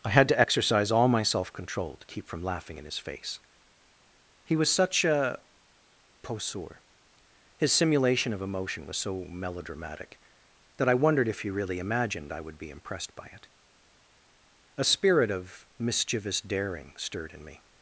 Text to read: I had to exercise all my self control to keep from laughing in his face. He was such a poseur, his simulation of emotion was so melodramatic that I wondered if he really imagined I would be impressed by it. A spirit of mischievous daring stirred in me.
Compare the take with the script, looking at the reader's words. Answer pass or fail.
pass